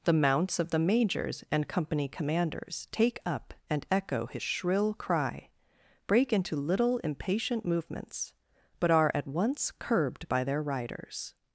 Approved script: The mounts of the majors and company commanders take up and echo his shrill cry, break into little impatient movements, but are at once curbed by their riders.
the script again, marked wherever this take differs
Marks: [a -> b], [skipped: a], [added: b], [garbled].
The mounts of the majors and company commanders take up and echo his shrill cry, break into little impatient movements, but are at once curbed by their riders.